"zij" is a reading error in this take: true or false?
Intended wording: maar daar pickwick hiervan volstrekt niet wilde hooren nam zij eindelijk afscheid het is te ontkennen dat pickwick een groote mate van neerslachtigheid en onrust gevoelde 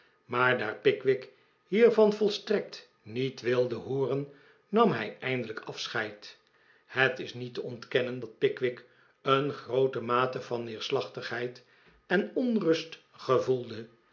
true